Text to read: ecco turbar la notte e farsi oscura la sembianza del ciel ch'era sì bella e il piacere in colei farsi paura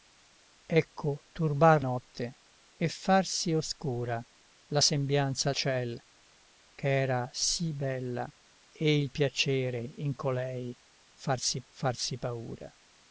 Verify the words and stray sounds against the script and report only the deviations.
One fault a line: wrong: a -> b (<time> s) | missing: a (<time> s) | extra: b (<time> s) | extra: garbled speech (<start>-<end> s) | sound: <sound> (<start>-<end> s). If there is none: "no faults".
missing: la (1.9 s)
missing: del (5.5 s)
extra: farsi (11.7 s)